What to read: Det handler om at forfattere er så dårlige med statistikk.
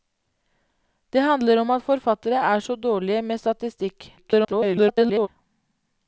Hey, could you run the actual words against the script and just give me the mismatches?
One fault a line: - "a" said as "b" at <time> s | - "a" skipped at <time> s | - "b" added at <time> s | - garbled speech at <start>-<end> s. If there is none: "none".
- garbled speech at 4.2-5.3 s